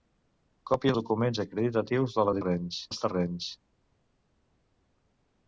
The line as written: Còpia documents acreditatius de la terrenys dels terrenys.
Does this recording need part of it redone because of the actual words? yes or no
no